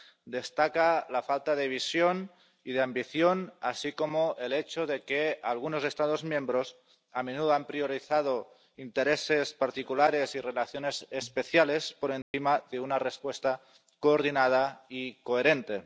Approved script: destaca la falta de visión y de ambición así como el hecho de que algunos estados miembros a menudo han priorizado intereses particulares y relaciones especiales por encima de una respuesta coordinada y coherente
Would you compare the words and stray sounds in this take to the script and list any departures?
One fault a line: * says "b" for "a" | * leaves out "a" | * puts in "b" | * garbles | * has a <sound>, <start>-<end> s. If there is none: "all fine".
* has a dropout, 12.2-12.3 s